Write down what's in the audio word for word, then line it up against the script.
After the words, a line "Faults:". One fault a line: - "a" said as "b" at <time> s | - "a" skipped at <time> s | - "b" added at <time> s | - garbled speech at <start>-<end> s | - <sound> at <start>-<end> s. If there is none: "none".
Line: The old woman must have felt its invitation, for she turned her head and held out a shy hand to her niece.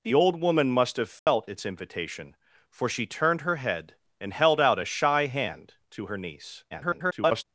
The old woman must have felt its invitation, for she turned her head and held out a shy hand to her niece. [garbled]
Faults:
- dropout at 1.2-1.3 s
- garbled speech at 6.7-7.4 s